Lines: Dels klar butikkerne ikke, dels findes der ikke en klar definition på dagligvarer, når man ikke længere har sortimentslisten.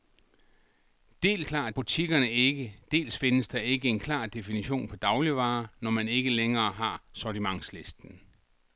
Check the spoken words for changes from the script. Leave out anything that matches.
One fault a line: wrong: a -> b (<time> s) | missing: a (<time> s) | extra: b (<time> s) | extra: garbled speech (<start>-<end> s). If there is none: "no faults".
no faults